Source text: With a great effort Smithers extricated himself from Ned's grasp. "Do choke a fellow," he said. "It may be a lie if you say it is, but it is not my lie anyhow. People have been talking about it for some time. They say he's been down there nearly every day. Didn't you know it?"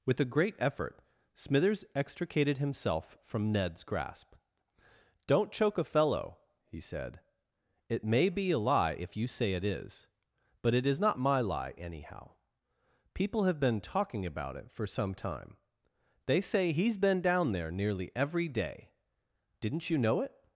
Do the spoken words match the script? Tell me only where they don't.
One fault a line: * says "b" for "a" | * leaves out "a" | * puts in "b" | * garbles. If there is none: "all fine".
* says "Don't" for "Do"